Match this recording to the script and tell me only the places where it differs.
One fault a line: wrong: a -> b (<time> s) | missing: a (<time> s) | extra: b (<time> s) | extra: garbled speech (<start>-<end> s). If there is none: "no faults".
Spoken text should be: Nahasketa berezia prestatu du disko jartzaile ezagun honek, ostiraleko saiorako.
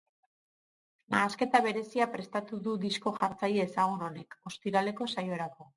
no faults